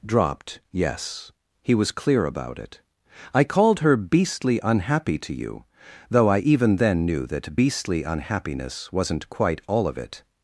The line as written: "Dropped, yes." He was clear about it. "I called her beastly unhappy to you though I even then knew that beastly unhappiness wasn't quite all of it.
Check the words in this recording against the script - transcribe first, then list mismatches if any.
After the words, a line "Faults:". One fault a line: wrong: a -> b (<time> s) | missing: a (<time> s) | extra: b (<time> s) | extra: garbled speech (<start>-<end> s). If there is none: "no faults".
"Dropped, yes." He was clear about it. "I called her beastly unhappy to you though I even then knew that beastly unhappiness wasn't quite all of it.
Faults:
no faults